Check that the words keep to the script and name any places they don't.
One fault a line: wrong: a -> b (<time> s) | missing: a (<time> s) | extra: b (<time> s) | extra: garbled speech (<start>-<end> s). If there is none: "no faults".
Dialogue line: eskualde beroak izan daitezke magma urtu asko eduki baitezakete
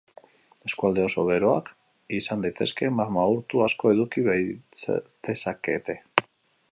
extra: oso (1.1 s)